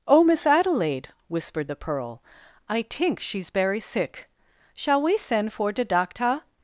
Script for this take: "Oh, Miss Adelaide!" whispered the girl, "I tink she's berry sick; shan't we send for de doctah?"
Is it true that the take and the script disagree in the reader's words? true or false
true